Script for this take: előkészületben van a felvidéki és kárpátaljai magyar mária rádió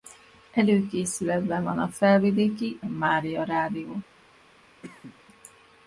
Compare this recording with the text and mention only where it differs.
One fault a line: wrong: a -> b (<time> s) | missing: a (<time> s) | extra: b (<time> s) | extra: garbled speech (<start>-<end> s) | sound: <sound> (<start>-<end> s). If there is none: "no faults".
missing: és kárpátaljai magyar (2.8 s)
sound: cough (4.8-5.2 s)